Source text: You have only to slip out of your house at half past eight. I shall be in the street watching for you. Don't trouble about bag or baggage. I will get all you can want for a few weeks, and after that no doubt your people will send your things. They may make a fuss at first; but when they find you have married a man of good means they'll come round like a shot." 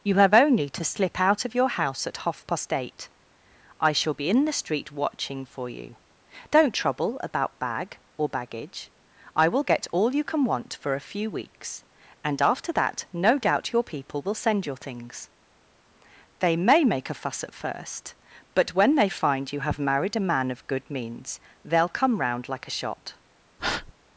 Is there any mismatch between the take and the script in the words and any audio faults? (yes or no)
yes